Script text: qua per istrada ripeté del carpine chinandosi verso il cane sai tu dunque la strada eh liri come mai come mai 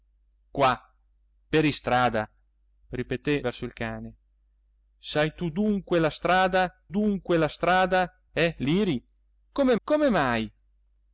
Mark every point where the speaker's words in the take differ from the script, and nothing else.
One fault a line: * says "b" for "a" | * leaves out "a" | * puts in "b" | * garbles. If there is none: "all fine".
* leaves out "del carpine chinandosi"
* puts in "dunque la strada"
* leaves out "mai"